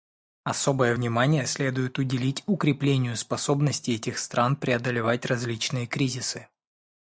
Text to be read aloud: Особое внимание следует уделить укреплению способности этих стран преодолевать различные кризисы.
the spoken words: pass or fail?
pass